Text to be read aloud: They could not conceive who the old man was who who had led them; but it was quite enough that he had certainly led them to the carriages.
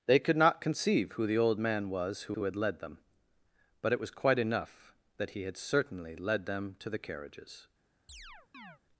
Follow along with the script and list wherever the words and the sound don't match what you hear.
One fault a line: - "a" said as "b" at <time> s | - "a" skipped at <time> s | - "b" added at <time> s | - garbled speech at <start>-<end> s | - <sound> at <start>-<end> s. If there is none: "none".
- chirp at 8.1-8.8 s